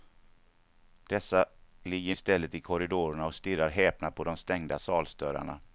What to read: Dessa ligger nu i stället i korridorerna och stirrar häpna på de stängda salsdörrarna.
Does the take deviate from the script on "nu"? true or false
true